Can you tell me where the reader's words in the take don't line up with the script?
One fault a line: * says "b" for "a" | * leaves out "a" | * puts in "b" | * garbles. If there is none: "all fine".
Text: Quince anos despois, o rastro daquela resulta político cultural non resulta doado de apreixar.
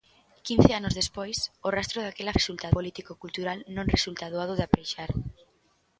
all fine